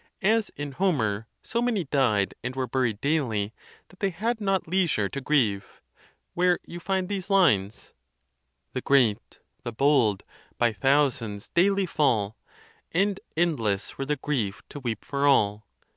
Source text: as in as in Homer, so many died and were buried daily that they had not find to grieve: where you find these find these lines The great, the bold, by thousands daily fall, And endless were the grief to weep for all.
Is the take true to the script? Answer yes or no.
no